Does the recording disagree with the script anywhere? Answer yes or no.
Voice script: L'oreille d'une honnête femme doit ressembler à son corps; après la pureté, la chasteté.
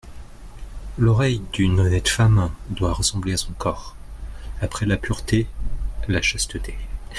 no